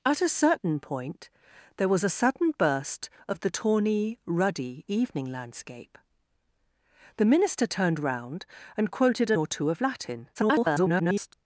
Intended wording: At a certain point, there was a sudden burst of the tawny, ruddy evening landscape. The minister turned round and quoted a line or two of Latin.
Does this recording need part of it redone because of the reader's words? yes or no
yes